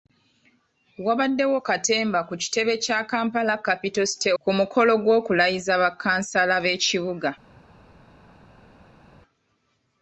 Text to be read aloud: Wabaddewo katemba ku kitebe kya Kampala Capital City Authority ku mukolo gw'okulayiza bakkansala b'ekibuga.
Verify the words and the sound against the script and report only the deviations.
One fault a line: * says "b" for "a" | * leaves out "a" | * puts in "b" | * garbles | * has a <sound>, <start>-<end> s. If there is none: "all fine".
* leaves out "Authority"